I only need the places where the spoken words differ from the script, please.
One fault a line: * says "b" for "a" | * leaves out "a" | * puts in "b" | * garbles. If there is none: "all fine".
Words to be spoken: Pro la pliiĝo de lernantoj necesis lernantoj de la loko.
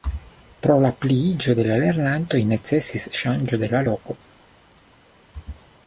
* puts in "la"
* says "ŝanĝo" for "lernantoj"